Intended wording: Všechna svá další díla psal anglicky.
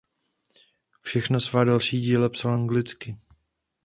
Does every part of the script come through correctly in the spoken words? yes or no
yes